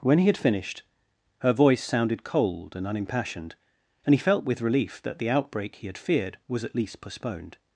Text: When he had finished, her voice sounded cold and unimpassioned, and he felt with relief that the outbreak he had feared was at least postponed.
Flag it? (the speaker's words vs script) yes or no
no